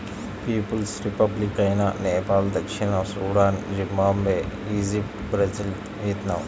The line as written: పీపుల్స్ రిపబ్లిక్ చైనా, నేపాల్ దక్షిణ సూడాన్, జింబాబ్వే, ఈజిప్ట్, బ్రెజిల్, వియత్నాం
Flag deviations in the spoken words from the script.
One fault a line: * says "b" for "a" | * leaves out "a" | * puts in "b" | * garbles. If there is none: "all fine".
all fine